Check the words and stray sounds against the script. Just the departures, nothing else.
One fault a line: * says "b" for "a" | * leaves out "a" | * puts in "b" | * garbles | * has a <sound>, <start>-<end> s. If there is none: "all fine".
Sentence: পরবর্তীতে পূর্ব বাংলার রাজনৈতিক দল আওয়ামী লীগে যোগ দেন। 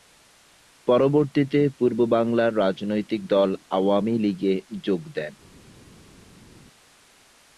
all fine